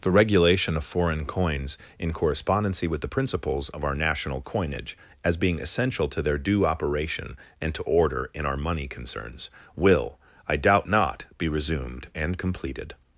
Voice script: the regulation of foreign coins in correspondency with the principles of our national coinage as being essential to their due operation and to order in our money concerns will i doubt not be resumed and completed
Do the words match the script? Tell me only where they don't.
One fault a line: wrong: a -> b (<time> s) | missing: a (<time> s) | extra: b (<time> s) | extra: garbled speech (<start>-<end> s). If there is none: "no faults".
no faults